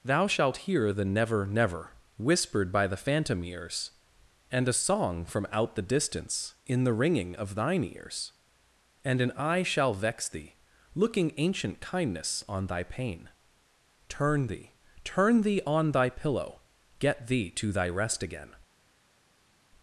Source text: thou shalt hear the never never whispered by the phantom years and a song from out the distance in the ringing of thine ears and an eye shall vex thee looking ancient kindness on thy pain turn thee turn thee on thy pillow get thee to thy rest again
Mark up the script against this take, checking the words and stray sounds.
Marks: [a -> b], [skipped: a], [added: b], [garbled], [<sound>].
thou shalt hear the never never whispered by the phantom [years -> ears] and a song from out the distance in the ringing of thine ears and an eye shall vex thee looking ancient kindness on thy pain turn thee turn thee on thy pillow get thee to thy rest again